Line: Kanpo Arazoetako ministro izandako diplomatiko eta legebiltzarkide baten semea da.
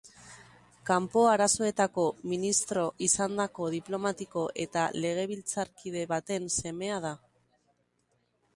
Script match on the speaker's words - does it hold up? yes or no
yes